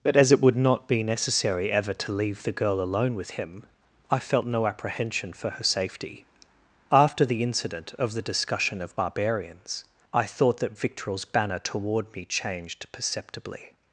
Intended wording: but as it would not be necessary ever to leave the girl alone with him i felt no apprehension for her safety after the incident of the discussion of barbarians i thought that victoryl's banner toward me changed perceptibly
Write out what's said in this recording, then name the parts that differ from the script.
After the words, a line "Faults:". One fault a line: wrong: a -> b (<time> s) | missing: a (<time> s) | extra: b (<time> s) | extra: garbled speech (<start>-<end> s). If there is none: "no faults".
but as it would not be necessary ever to leave the girl alone with him i felt no apprehension for her safety after the incident of the discussion of barbarians i thought that victoryl's banner toward me changed perceptibly
Faults:
no faults